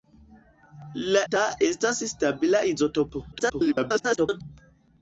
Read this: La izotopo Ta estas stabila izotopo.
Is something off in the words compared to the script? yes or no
yes